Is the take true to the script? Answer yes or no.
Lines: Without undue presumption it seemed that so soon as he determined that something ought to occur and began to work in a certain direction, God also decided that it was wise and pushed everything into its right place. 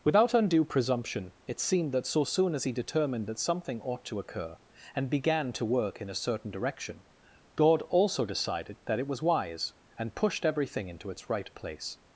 yes